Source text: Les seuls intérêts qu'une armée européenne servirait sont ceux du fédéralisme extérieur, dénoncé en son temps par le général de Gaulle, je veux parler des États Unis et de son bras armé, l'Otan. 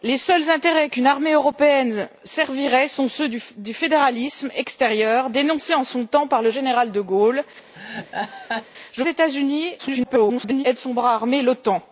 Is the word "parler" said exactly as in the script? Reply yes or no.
no